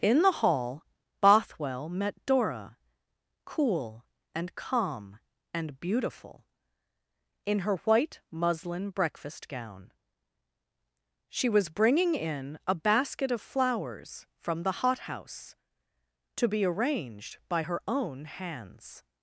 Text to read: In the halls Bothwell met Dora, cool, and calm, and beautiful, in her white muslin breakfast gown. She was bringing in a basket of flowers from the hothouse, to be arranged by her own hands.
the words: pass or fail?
fail